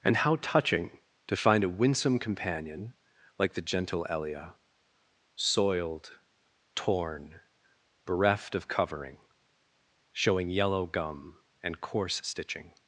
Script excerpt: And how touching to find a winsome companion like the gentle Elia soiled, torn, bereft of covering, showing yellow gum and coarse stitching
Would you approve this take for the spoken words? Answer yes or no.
yes